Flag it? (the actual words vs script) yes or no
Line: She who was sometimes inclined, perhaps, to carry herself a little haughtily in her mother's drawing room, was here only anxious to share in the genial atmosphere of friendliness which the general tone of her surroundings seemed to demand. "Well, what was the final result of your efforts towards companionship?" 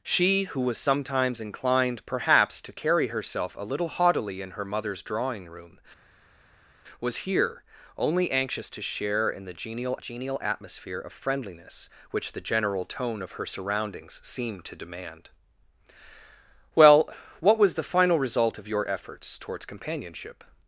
yes